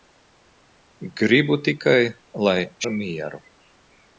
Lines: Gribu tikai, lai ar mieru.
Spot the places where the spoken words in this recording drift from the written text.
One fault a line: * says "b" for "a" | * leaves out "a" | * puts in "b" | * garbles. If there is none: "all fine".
all fine